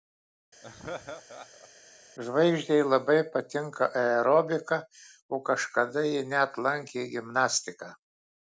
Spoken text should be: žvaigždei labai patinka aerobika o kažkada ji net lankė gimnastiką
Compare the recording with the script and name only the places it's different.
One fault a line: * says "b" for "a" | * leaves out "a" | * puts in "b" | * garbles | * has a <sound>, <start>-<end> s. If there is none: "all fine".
* has a laugh, 0.6-1.7 s